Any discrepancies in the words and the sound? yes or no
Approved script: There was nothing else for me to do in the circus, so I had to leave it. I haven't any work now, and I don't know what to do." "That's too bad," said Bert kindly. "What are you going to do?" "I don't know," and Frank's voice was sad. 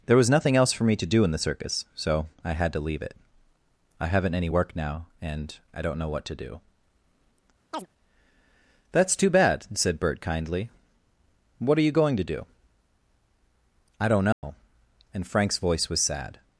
yes